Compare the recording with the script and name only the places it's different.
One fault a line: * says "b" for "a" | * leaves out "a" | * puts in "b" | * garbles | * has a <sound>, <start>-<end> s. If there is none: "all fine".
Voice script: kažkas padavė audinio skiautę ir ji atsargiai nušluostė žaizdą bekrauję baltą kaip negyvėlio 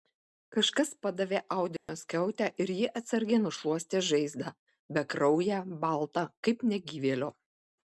* has a dropout, 1.8-1.9 s